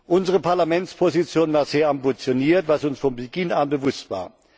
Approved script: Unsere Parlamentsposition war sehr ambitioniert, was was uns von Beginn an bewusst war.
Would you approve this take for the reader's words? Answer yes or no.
no